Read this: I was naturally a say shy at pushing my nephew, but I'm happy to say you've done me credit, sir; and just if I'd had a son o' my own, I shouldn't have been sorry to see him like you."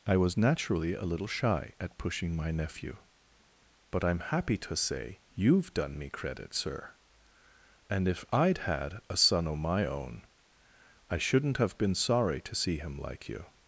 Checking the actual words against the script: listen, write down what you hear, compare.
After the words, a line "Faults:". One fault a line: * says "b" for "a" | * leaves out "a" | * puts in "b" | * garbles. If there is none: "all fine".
I was naturally a little shy at pushing my nephew, but I'm happy to say you've done me credit, sir; and if I'd had a son o' my own, I shouldn't have been sorry to see him like you."
Faults:
* says "little" for "say"
* leaves out "just"